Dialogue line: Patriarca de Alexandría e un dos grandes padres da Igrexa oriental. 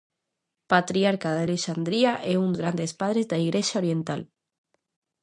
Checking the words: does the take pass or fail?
fail